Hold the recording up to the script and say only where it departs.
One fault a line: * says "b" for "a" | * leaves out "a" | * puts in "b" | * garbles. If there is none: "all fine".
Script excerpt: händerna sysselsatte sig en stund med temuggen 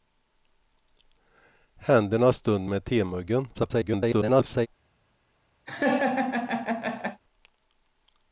* leaves out "sysselsatte sig en"
* garbles